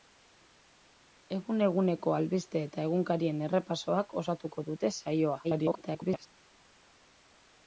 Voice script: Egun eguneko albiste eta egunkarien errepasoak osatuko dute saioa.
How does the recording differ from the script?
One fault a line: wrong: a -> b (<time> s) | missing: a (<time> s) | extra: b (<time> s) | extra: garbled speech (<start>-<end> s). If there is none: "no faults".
extra: garbled speech (5.4-6.3 s)